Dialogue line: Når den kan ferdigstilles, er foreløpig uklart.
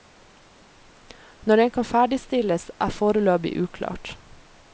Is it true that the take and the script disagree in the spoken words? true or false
false